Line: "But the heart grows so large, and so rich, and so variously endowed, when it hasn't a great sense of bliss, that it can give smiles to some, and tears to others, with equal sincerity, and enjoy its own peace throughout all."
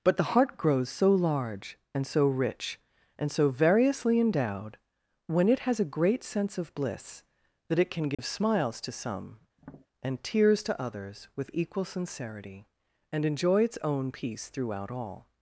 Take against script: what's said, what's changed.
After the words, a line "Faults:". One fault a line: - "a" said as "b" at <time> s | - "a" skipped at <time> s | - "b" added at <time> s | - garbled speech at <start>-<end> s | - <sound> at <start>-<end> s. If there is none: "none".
"But the heart grows so large, and so rich, and so variously endowed, when it has a great sense of bliss, that it can give smiles to some, and tears to others, with equal sincerity, and enjoy its own peace throughout all."
Faults:
- "hasn't" said as "has" at 5.6 s
- dropout at 8.1-8.2 s
- tap at 9.6-9.9 s